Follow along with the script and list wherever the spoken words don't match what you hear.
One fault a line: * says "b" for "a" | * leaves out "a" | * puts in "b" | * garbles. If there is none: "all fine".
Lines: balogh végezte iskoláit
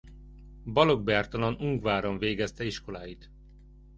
* puts in "bertalan ungváron"